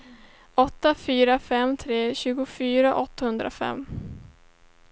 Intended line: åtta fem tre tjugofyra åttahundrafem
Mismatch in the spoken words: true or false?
true